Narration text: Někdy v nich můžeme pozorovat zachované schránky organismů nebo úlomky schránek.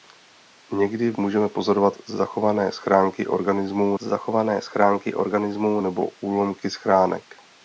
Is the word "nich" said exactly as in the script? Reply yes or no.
no